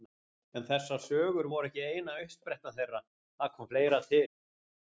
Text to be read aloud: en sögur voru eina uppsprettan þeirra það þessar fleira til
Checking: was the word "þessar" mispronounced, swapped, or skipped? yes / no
yes